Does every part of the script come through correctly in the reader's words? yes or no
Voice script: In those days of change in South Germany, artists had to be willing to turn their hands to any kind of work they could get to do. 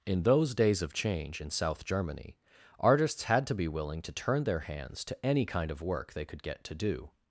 yes